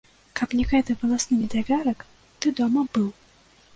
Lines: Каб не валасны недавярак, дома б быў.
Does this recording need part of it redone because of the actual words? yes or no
yes